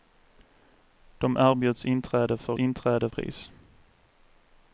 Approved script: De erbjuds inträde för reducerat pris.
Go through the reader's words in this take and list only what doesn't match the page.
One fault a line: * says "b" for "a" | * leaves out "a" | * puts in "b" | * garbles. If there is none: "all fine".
* says "inträde" for "reducerat"